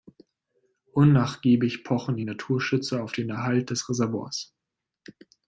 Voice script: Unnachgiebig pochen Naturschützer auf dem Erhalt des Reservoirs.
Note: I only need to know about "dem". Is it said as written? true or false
false